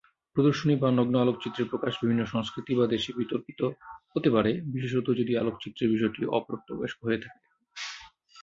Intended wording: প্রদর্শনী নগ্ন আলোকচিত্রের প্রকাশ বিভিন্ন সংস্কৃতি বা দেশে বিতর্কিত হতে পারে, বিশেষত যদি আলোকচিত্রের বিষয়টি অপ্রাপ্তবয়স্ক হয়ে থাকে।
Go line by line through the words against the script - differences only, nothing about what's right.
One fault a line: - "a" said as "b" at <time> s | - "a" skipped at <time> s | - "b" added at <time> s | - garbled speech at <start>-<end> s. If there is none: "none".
- "বা" added at 0.8 s